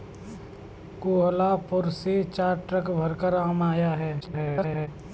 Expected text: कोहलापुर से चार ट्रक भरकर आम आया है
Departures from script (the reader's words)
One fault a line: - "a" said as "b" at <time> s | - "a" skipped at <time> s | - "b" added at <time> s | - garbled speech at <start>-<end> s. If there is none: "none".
- garbled speech at 4.2-4.9 s